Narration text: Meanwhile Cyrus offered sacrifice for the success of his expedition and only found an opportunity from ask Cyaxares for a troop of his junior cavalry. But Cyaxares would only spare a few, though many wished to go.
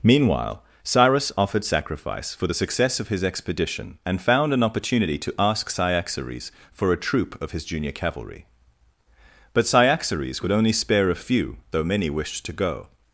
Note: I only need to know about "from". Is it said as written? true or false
false